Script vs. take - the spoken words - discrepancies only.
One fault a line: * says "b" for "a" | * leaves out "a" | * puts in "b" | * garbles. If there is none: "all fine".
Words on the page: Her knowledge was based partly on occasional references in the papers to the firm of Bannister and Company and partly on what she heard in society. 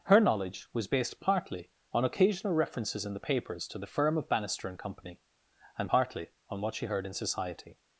all fine